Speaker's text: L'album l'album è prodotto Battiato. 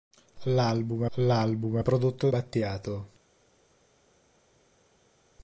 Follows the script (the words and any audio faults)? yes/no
yes